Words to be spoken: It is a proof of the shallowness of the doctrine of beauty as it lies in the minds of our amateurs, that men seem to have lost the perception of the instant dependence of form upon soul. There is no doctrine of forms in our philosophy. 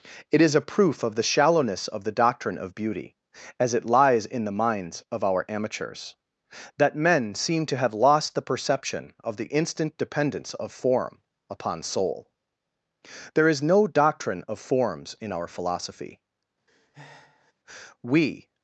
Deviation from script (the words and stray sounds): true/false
true